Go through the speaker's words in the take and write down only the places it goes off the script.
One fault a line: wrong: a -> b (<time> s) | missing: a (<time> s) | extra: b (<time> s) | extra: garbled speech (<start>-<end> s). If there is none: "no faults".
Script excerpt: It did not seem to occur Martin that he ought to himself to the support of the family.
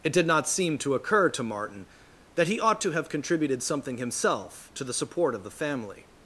extra: to (1.3 s)
extra: have contributed something (2.9 s)